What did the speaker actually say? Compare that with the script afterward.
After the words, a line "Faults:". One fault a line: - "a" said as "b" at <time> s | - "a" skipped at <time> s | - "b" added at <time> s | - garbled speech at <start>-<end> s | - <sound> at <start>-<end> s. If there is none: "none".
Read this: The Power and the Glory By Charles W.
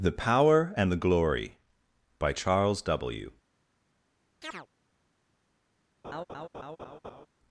The Power and the Glory By Charles W.
Faults:
- chirp at 4.4-4.7 s
- laugh at 6.0-7.3 s